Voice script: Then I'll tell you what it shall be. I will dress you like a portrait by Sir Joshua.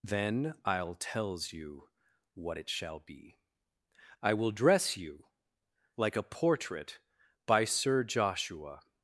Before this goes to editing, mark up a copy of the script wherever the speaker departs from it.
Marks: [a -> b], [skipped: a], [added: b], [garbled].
Then I'll [tell -> tells] you what it shall be. I will dress you like a portrait by Sir Joshua.